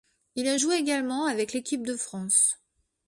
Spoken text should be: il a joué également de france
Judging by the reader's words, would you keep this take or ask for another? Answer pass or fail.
fail